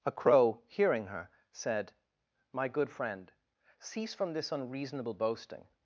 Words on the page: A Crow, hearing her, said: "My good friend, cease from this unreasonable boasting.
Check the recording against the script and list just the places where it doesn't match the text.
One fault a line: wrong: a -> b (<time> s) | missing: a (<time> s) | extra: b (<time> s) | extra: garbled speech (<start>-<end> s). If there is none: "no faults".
no faults